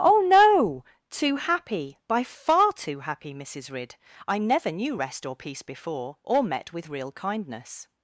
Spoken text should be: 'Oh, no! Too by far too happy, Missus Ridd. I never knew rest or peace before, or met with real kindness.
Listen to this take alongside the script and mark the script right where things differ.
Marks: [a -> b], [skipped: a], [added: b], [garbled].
'Oh, no! Too [added: happy] by far too happy, Missus Ridd. I never knew rest or peace before, or met with real kindness.